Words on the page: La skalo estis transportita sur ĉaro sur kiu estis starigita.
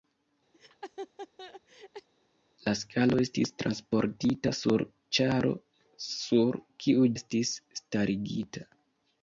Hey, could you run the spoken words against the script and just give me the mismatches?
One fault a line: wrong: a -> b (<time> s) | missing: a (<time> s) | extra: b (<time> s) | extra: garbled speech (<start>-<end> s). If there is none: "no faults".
no faults